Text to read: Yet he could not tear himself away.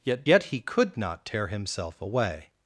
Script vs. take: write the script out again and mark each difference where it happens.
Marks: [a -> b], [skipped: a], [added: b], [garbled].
Yet [added: yet] he could not tear himself away.